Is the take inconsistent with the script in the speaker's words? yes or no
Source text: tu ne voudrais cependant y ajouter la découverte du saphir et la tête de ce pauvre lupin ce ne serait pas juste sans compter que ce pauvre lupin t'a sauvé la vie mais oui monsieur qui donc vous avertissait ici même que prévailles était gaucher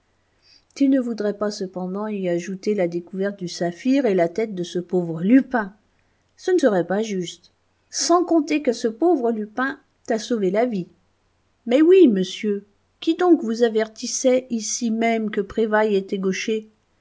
yes